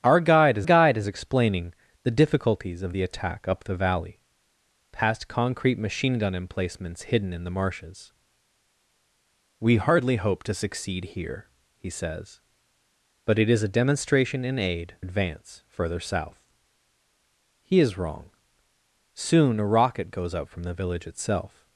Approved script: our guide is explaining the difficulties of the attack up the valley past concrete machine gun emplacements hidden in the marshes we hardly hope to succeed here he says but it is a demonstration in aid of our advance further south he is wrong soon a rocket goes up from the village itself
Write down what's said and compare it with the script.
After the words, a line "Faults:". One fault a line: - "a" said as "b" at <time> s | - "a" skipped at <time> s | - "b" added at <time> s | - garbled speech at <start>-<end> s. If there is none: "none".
our guide is guide is explaining the difficulties of the attack up the valley past concrete machine gun emplacements hidden in the marshes we hardly hope to succeed here he says but it is a demonstration in aid advance further south he is wrong soon a rocket goes up from the village itself
Faults:
- "guide is" added at 0.6 s
- "of our" skipped at 15.0 s